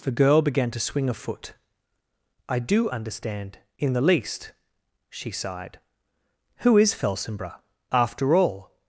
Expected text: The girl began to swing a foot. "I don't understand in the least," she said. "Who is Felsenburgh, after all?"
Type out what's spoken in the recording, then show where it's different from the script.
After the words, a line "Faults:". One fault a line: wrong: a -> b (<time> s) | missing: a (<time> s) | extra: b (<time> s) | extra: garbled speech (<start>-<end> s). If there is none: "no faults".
The girl began to swing a foot. "I do understand in the least," she sighed. "Who is Felsenburgh, after all?"
Faults:
wrong: don't -> do (2.6 s)
wrong: said -> sighed (5.3 s)